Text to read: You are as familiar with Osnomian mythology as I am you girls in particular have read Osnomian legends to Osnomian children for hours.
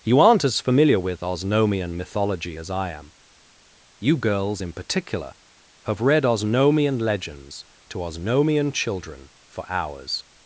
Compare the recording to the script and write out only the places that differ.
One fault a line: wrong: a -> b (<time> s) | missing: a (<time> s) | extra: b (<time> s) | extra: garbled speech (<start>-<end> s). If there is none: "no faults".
wrong: are -> aren't (0.2 s)